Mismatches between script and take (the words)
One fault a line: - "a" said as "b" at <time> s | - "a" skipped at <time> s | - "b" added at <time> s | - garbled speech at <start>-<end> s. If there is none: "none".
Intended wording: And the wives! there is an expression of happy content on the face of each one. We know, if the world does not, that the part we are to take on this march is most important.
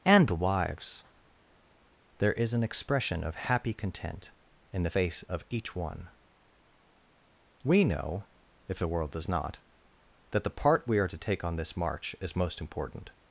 - "on" said as "in" at 4.7 s